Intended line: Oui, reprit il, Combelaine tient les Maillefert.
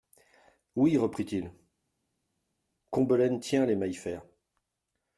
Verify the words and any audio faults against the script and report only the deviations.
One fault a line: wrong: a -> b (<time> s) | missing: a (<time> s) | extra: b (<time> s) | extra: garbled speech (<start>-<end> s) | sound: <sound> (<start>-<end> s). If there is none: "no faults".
no faults